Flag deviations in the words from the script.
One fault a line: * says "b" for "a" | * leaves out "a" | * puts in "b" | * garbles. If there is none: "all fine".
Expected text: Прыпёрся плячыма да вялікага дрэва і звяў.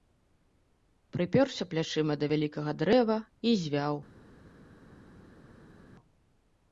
all fine